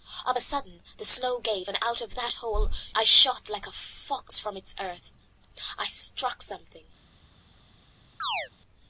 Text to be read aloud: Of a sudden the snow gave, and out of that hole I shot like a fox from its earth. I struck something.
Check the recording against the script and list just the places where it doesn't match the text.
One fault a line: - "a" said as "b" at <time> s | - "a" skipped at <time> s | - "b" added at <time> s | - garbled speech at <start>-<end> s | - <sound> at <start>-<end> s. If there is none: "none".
- chirp at 8.2-8.5 s